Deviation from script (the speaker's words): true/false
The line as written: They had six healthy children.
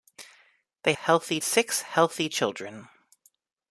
true